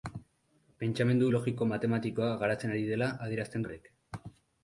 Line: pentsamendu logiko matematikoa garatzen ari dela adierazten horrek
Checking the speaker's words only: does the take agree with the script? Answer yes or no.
yes